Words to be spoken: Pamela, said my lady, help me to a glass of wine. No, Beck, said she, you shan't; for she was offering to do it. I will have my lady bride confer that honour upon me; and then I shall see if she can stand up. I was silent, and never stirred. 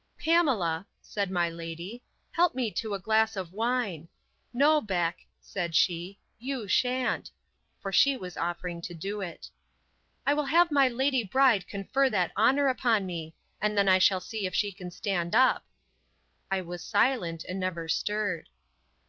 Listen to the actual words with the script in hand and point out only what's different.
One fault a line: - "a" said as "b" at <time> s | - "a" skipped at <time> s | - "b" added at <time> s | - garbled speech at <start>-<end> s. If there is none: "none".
none